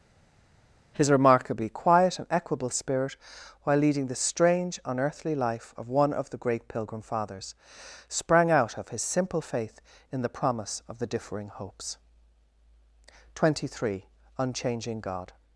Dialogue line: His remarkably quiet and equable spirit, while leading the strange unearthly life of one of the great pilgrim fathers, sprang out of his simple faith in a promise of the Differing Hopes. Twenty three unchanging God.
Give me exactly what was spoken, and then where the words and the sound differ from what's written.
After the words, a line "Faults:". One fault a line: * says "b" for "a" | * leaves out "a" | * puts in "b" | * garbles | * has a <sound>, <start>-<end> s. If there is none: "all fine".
His remarkably quiet and equable spirit, while leading the strange unearthly life of one of the great pilgrim fathers, sprang out of his simple faith in the promise of the Differing Hopes. Twenty three unchanging God.
Faults:
* says "the" for "a"